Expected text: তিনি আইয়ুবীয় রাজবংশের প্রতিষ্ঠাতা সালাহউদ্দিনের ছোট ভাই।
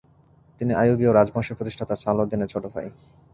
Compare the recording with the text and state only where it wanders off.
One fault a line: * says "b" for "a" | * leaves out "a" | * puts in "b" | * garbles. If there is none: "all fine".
all fine